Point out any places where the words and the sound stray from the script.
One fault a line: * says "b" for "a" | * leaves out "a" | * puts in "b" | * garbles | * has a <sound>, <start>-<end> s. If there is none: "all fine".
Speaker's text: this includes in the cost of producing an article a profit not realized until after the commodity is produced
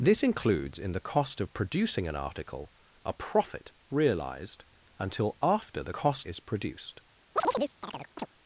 * leaves out "not"
* says "cost" for "commodity"
* has a chirp, 7.4-8.3 s